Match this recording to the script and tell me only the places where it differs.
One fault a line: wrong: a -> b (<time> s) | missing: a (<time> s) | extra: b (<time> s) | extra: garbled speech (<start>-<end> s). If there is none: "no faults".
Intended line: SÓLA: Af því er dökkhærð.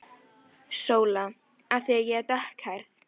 extra: ég (2.0 s)